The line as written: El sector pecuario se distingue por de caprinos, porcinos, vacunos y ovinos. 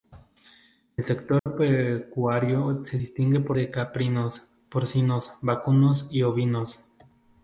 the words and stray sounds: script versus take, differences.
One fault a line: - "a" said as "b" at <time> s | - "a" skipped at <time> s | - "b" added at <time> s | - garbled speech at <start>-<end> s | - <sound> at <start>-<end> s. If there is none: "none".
- dropout at 1.4-1.5 s